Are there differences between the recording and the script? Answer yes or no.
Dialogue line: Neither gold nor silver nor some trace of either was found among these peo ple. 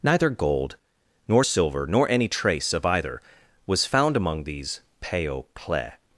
yes